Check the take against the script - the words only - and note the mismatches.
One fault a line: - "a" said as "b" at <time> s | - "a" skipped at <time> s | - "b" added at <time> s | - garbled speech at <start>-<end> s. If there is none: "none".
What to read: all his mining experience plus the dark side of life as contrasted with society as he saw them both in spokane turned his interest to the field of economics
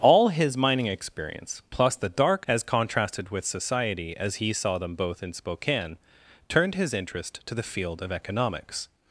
- "side of life" skipped at 2.5 s